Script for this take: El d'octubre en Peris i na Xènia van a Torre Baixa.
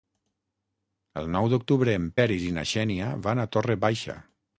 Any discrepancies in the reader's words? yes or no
yes